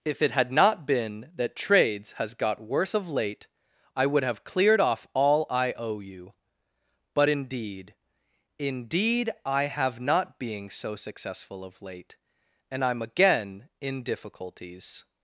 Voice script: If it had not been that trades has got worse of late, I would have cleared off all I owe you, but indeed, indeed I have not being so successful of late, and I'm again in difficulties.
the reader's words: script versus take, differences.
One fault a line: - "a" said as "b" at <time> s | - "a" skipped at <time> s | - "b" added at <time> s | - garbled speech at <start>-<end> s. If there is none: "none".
none